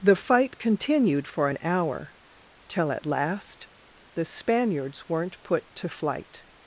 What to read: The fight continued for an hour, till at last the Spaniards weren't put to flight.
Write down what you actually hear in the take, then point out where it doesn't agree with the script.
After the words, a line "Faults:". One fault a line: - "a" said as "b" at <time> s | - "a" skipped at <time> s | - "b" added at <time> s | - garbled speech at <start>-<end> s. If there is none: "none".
The fight continued for an hour, till at last the Spaniards weren't put to flight.
Faults:
none